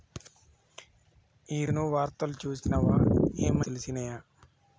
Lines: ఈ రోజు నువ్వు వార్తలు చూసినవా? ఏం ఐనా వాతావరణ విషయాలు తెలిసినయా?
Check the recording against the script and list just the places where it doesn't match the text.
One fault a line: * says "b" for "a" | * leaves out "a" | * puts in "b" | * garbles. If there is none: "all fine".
* leaves out "రోజు"
* leaves out "ఐనా వాతావరణ విషయాలు"